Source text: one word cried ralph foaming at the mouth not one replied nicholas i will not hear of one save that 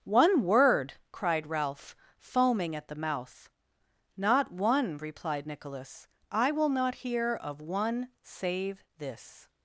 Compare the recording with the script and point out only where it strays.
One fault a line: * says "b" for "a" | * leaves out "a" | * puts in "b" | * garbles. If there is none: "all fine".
* says "this" for "that"